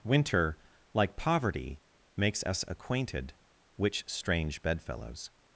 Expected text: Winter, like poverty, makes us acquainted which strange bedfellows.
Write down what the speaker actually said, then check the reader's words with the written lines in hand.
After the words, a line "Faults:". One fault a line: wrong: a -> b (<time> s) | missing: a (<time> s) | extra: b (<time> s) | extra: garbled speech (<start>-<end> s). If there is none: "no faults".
Winter, like poverty, makes us acquainted which strange bedfellows.
Faults:
no faults